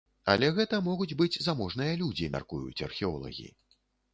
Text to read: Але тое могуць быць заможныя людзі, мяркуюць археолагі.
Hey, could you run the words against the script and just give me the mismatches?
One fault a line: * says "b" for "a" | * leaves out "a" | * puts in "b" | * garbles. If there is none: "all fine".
* says "гэта" for "тое"